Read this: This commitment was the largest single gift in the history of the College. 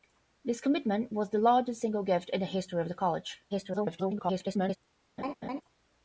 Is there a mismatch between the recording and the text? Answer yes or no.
yes